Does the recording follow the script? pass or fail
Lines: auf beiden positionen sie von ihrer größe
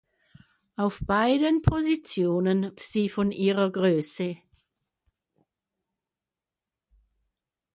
pass